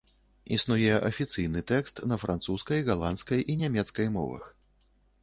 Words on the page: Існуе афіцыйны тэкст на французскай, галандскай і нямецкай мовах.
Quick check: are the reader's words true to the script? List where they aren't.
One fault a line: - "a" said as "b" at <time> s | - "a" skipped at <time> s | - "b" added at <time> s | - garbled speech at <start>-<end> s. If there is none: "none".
none